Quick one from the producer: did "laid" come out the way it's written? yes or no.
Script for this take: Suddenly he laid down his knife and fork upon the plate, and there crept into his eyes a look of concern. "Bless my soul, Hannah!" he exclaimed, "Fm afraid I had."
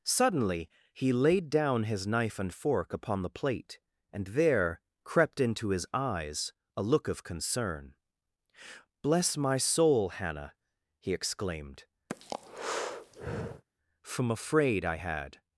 yes